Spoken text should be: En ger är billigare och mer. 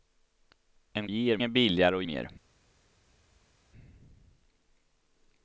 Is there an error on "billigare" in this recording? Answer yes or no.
no